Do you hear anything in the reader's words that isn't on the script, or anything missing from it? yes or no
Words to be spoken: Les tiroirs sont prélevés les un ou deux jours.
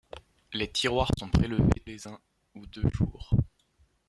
no